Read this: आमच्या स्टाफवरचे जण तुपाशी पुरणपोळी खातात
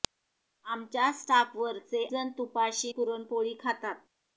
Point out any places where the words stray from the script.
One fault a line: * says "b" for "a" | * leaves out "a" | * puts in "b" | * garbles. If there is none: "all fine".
all fine